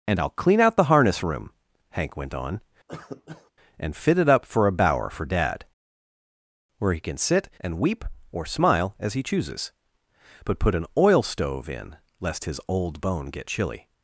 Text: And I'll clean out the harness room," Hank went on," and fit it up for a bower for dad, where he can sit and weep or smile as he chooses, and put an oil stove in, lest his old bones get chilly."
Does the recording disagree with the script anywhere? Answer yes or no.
yes